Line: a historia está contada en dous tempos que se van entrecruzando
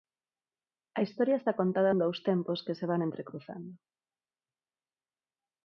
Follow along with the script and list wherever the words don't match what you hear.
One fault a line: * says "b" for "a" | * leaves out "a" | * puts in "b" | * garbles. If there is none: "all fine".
all fine